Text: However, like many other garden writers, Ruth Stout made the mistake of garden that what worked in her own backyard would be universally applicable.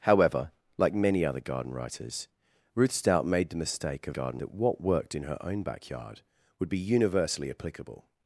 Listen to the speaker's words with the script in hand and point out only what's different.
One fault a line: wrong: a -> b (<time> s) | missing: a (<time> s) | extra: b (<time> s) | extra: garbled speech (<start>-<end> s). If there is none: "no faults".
no faults